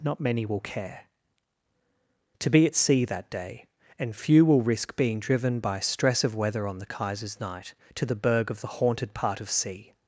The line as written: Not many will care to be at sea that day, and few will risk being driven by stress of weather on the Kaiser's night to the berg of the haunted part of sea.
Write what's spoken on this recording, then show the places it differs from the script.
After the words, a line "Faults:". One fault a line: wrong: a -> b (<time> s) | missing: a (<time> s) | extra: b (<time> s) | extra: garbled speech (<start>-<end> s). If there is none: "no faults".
Not many will care to be at sea that day, and few will risk being driven by stress of weather on the Kaiser's night to the berg of the haunted part of sea.
Faults:
no faults